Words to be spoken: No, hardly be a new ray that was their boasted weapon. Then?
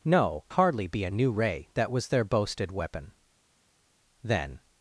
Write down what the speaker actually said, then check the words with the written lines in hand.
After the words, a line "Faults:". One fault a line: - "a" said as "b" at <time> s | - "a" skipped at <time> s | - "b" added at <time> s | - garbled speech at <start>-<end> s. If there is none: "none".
No, hardly be a new ray that was their boasted weapon. Then?
Faults:
none